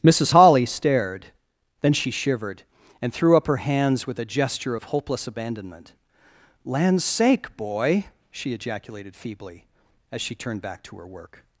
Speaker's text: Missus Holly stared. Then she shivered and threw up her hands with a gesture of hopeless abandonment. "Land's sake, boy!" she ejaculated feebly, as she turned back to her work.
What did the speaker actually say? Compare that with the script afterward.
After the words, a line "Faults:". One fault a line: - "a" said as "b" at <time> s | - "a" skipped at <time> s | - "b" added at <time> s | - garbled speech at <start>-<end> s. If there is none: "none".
Missus Holly stared. Then she shivered and threw up her hands with a gesture of hopeless abandonment. "Land's sake, boy!" she ejaculated feebly, as she turned back to her work.
Faults:
none